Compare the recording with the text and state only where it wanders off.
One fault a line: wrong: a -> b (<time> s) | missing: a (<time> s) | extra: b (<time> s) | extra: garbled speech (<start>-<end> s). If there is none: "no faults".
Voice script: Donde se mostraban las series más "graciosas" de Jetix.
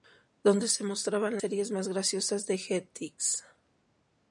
missing: las (1.4 s)